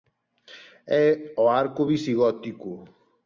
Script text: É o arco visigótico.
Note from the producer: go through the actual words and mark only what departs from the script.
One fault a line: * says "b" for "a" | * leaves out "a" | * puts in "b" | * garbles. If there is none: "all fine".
all fine